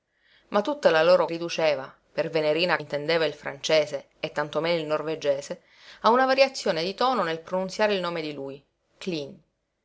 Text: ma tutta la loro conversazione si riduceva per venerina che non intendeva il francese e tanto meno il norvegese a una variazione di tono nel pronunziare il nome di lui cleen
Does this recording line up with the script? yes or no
no